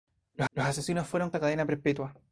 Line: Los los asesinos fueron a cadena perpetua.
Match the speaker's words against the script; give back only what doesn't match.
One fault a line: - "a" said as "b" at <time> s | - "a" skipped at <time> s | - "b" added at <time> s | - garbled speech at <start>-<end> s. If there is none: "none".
none